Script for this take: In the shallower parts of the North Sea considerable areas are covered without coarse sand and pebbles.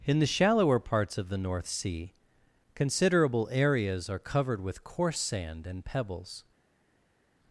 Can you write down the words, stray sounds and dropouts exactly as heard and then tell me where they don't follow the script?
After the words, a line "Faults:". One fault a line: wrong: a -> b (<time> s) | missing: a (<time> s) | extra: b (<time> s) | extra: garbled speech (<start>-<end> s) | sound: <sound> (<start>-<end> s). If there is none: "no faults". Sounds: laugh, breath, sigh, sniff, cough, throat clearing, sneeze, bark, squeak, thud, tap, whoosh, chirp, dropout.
In the shallower parts of the North Sea considerable areas are covered with coarse sand and pebbles.
Faults:
wrong: without -> with (4.6 s)